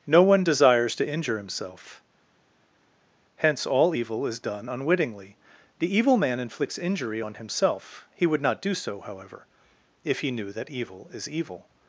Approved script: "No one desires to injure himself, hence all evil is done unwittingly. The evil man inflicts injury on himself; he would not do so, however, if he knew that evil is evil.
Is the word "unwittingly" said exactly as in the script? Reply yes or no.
yes